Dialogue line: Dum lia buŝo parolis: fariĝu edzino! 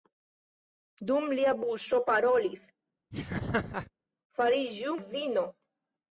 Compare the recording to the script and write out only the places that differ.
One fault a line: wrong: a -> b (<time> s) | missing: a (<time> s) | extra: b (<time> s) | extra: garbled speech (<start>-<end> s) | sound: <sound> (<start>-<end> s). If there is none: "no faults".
sound: laugh (3.1-3.9 s)